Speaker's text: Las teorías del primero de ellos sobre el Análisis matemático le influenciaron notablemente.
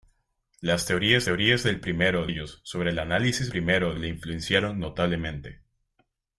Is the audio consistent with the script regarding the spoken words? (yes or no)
no